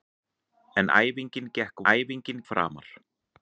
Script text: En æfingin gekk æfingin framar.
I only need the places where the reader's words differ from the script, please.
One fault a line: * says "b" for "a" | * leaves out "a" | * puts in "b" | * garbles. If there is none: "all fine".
all fine